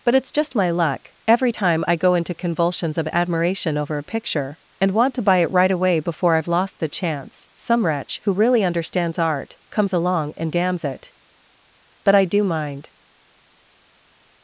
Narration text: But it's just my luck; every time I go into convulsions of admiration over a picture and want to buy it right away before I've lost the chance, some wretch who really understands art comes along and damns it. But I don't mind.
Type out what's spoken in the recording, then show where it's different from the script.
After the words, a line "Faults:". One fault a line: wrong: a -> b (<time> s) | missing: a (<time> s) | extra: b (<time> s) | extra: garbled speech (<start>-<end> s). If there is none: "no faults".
But it's just my luck; every time I go into convulsions of admiration over a picture and want to buy it right away before I've lost the chance, some wretch who really understands art comes along and damns it. But I do mind.
Faults:
wrong: don't -> do (12.3 s)